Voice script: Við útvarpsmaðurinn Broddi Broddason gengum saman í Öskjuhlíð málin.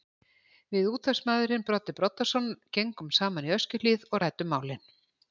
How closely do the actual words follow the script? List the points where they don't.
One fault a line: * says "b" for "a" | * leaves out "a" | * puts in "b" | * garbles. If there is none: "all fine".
* puts in "og ræddum"